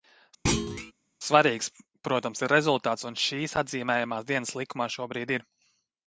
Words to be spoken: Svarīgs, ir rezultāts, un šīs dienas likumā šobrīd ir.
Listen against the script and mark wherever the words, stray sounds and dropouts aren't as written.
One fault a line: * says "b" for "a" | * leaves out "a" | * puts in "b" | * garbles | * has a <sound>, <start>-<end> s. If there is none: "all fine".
* has a thud, 0.5-0.9 s
* puts in "protams"
* puts in "atzīmējamās"